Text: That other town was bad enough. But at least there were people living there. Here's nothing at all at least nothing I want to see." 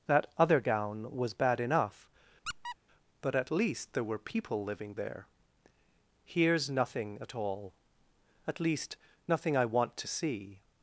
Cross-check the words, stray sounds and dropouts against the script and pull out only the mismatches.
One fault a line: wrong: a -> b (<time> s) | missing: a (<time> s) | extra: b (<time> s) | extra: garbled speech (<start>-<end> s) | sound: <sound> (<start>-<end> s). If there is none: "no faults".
wrong: town -> gown (0.6 s)
sound: squeak (2.5-2.8 s)